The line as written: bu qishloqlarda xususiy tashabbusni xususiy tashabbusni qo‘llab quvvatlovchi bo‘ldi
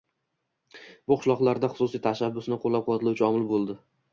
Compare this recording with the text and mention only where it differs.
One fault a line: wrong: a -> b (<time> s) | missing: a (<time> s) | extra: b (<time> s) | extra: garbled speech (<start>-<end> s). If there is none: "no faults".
missing: xususiy tashabbusni (2.6 s)
extra: omil (3.3 s)